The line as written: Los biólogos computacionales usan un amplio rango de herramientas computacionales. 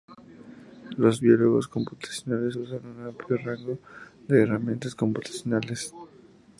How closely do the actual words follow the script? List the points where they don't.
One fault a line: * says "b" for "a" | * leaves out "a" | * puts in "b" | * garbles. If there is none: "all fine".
all fine